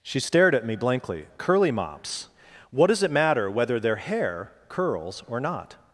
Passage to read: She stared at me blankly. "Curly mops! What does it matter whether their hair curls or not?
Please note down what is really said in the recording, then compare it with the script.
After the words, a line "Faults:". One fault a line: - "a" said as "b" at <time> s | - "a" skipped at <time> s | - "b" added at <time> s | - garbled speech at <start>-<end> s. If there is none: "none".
She stared at me blankly. "Curly mops! What does it matter whether their hair curls or not?
Faults:
none